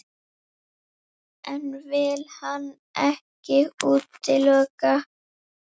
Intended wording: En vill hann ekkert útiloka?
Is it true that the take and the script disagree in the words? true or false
false